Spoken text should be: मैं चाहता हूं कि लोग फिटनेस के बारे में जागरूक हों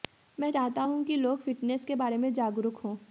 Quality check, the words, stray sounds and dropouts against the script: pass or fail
pass